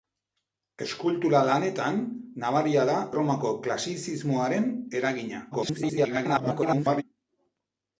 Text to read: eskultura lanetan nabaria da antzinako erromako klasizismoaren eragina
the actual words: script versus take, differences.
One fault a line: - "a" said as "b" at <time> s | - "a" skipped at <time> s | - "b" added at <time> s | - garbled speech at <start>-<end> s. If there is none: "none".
- "antzinako" skipped at 3.0 s
- garbled speech at 5.5-7.0 s